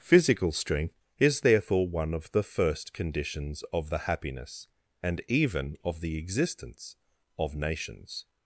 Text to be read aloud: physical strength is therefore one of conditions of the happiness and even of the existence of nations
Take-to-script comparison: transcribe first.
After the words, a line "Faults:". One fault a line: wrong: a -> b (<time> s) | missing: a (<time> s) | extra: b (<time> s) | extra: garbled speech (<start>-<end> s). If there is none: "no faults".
physical strength is therefore one of the first conditions of the happiness and even of the existence of nations
Faults:
extra: the first (2.3 s)